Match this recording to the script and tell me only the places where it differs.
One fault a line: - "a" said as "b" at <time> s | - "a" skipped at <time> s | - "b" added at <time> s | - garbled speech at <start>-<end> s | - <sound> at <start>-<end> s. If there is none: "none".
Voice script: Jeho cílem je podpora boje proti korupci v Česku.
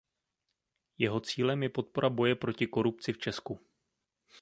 none